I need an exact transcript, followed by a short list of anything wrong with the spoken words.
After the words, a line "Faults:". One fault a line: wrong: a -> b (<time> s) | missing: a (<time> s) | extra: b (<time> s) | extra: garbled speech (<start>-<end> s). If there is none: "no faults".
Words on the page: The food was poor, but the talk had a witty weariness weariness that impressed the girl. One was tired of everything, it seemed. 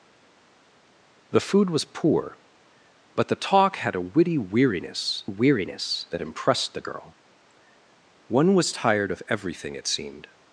The food was poor, but the talk had a witty weariness weariness that impressed the girl. One was tired of everything, it seemed.
Faults:
no faults